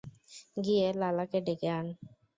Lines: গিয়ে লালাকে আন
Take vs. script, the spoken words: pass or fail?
fail